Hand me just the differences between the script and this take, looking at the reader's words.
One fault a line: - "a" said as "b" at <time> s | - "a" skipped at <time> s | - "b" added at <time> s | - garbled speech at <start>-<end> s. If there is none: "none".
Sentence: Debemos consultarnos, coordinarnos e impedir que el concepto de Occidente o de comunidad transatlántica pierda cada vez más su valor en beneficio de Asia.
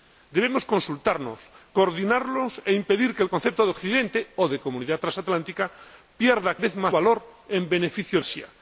- "cada" skipped at 6.6 s
- "su" skipped at 6.9 s
- "de" skipped at 8.2 s